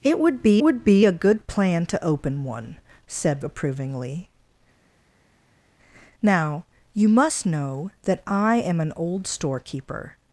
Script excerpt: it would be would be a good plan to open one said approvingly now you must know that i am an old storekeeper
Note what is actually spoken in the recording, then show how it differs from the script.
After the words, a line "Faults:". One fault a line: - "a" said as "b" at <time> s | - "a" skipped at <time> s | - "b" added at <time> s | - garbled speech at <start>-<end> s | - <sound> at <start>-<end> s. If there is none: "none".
it would be would be a good plan to open one said approvingly now you must know that i am an old storekeeper
Faults:
none